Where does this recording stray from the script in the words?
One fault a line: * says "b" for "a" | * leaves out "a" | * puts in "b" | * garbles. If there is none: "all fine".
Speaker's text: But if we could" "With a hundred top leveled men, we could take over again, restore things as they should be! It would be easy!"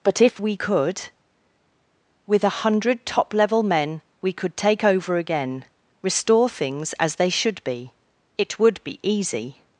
* says "level" for "leveled"